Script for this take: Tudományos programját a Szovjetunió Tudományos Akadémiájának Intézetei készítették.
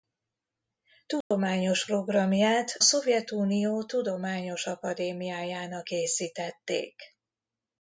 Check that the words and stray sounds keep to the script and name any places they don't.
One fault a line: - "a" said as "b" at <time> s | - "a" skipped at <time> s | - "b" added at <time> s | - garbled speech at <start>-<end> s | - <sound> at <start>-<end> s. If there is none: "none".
- dropout at 1.2-1.3 s
- "a" skipped at 2.8 s
- "Intézetei" skipped at 5.9 s